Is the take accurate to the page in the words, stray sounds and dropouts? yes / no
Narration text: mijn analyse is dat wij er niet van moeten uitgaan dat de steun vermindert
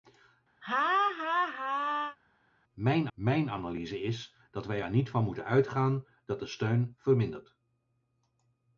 no